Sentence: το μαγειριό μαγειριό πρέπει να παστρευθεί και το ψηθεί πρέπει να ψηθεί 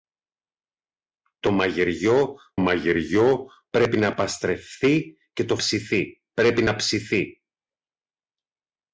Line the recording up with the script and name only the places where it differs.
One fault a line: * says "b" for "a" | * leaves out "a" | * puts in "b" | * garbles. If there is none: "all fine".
all fine